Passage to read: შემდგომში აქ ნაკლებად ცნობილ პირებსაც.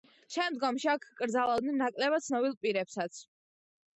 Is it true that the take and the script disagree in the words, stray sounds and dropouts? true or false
true